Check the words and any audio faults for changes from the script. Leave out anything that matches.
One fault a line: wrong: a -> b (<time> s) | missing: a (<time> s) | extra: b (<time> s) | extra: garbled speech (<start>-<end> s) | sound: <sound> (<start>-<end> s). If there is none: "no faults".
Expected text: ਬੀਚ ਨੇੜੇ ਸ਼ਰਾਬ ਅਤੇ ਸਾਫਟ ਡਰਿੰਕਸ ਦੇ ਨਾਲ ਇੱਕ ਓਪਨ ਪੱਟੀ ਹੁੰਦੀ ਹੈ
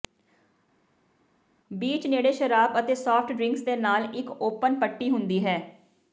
no faults